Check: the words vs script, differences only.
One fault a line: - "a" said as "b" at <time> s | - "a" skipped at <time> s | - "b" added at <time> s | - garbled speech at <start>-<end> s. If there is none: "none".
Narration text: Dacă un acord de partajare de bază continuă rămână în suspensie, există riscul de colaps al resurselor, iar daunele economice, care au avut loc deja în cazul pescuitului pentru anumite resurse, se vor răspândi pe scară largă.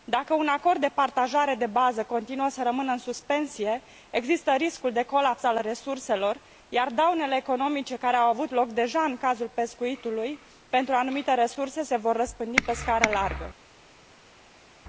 - "să" added at 2.5 s